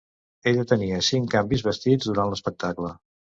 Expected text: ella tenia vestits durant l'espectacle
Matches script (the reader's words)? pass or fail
fail